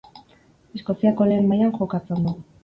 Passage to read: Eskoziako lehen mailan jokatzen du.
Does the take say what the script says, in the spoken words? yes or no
yes